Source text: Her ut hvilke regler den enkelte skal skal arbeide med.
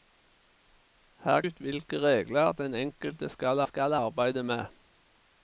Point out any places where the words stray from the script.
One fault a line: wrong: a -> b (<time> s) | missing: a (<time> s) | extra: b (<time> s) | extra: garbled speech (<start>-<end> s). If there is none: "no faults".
no faults